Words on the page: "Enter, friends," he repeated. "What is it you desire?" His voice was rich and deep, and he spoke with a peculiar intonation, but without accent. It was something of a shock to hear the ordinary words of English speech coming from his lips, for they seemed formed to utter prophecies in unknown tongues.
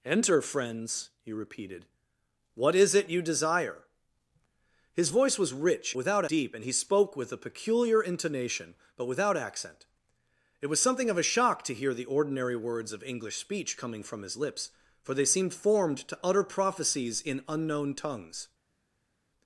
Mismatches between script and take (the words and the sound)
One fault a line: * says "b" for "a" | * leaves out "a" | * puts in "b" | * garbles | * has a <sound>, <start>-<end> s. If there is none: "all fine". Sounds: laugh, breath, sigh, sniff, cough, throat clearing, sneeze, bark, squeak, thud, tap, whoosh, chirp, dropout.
* says "without" for "and"